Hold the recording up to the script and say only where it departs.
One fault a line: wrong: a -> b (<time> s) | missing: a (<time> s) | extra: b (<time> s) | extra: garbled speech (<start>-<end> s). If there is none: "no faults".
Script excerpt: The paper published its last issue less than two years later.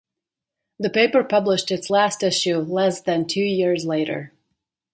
no faults